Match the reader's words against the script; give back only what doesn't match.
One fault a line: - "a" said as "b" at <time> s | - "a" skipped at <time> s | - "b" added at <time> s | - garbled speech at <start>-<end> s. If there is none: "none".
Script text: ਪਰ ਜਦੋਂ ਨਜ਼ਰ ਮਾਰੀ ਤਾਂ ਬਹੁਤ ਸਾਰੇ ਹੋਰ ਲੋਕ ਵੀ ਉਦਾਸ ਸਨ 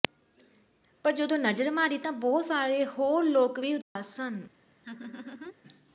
none